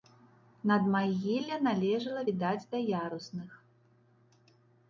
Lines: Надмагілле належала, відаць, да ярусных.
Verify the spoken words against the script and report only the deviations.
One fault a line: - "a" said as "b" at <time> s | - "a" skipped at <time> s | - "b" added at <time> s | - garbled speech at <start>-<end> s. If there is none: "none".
none